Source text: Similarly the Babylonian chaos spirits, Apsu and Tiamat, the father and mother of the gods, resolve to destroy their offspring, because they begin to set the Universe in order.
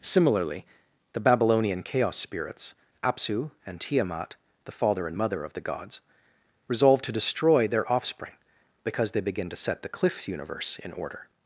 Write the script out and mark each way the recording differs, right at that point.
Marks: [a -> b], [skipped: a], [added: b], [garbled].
Similarly the Babylonian chaos spirits, Apsu and Tiamat, the father and mother of the gods, resolve to destroy their offspring, because they begin to set the [added: cliff] Universe in order.